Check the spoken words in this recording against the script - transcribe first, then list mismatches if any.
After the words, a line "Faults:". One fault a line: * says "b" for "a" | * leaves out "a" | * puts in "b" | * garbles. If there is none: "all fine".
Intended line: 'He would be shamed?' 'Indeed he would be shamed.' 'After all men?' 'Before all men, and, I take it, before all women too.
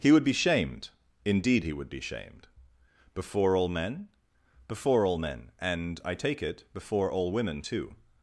'He would be shamed?' 'Indeed he would be shamed.' 'Before all men?' 'Before all men, and, I take it, before all women too.
Faults:
* says "Before" for "After"